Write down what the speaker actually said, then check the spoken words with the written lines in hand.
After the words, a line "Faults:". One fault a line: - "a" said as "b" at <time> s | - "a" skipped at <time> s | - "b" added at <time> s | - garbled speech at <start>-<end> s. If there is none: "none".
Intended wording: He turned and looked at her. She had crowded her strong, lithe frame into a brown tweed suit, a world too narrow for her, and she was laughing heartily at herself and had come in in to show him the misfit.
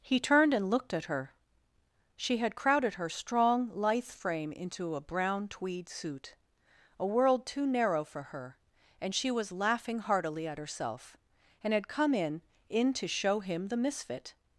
He turned and looked at her. She had crowded her strong, lithe frame into a brown tweed suit, a world too narrow for her, and she was laughing heartily at herself and had come in in to show him the misfit.
Faults:
none